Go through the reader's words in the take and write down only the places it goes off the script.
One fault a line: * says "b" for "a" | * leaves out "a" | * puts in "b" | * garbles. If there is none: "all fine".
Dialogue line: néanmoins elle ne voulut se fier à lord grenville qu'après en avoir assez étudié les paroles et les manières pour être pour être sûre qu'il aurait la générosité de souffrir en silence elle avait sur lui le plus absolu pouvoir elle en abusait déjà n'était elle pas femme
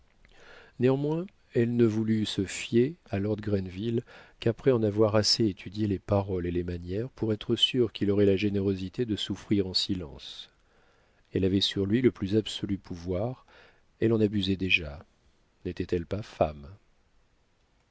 * leaves out "pour être"